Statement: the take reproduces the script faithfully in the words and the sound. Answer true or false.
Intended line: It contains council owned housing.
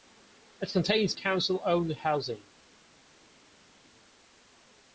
true